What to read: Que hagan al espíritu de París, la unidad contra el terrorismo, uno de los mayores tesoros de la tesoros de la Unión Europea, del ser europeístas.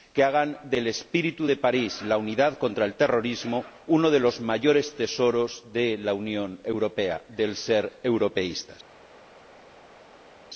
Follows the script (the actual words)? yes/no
no